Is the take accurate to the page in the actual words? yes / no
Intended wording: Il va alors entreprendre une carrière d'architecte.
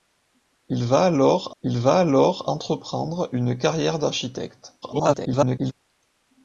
no